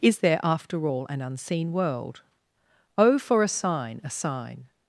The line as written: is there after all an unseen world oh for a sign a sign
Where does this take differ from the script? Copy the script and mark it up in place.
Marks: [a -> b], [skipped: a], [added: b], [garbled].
is there after all an unseen world oh for a sign a sign